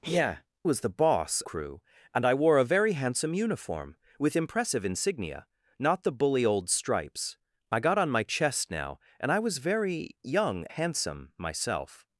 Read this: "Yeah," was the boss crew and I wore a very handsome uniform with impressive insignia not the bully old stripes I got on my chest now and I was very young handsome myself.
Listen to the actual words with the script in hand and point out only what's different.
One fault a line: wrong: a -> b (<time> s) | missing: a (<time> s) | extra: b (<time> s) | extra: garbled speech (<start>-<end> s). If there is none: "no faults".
no faults